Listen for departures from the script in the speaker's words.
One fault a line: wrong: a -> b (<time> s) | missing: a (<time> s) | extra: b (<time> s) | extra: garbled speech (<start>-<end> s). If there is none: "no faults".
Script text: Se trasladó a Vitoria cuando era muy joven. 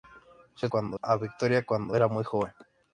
wrong: trasladó -> cuando (0.7 s)